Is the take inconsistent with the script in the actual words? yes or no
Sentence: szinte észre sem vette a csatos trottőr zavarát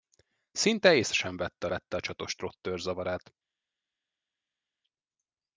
yes